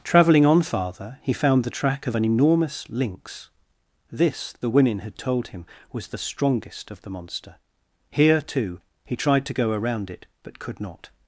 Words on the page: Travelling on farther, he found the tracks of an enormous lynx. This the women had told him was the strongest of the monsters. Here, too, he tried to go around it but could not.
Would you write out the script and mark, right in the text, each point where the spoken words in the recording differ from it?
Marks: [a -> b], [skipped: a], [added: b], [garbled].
Travelling on farther, he found the [tracks -> track] of an enormous lynx. This the women had told him was the strongest of the [monsters. -> monster] Here, too, he tried to go around it but could not.